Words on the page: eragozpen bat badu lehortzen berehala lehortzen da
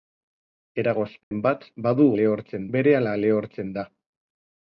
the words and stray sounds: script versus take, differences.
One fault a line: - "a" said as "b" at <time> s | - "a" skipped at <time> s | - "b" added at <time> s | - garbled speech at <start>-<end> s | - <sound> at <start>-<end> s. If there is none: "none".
- dropout at 1.2-1.3 s